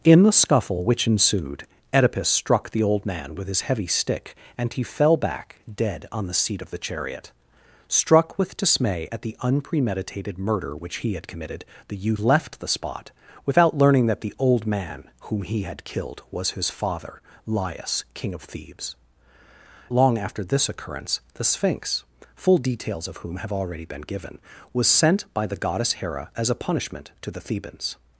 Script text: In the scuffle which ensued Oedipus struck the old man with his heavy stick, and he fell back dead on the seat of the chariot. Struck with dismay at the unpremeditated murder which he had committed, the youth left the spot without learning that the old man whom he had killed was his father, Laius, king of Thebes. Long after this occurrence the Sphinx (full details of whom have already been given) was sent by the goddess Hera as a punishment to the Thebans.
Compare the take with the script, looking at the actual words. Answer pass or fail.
pass